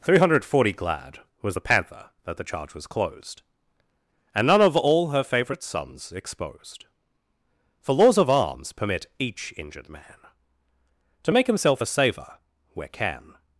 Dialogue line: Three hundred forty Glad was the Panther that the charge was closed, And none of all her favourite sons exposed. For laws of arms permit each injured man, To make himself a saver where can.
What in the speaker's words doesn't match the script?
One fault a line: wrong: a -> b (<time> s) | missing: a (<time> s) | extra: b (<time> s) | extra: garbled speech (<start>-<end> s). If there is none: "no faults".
no faults